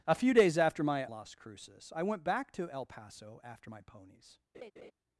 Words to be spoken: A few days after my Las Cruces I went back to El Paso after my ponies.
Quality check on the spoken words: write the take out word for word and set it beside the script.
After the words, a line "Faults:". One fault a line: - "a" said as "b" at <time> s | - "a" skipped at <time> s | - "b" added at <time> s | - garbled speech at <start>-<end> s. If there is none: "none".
A few days after my Las Cruces I went back to El Paso after my ponies.
Faults:
none